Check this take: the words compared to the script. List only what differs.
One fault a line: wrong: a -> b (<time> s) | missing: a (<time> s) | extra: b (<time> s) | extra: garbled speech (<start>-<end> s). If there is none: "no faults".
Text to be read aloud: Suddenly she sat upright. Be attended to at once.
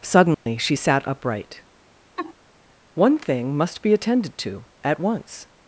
extra: One thing must (2.9 s)